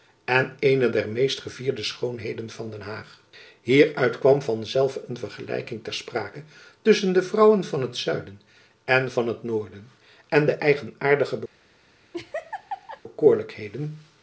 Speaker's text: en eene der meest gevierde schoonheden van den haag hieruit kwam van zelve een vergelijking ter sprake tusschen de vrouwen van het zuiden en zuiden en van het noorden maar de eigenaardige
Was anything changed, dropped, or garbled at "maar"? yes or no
yes